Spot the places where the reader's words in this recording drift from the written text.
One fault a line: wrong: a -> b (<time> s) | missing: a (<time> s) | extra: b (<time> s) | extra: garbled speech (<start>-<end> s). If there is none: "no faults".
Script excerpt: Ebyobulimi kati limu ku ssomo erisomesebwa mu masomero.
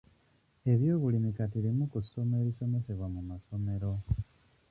no faults